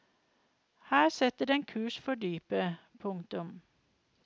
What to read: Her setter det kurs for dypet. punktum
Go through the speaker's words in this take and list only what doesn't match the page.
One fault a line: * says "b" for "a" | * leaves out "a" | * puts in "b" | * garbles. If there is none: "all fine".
* says "den" for "det"